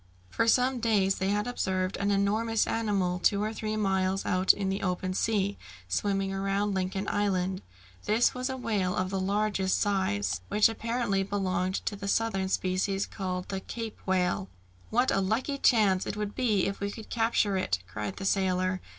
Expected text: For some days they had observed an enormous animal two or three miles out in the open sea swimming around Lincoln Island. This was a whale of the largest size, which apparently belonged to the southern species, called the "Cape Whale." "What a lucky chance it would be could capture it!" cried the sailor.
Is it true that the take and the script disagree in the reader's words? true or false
true